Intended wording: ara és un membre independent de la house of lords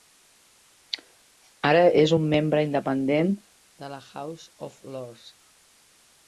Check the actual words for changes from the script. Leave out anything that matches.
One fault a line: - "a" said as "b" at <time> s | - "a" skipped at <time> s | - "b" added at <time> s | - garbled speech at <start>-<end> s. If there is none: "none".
none